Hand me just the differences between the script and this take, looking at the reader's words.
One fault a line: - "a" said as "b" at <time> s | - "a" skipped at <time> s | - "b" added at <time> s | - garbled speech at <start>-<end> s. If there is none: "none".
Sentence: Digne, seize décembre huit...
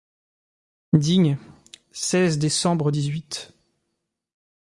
- "dix" added at 2.9 s